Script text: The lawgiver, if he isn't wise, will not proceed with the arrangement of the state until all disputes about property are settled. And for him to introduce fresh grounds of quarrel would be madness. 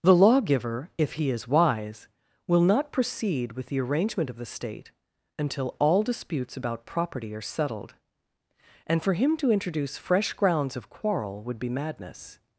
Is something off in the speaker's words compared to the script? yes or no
yes